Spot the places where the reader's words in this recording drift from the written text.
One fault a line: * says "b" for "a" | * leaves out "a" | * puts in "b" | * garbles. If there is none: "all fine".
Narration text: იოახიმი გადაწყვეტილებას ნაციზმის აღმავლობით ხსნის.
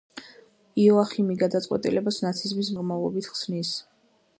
all fine